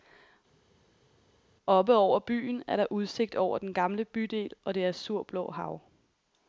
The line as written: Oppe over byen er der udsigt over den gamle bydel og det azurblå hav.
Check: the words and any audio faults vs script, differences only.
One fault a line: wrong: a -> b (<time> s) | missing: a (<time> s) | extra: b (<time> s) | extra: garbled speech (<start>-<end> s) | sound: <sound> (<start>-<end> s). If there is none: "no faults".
no faults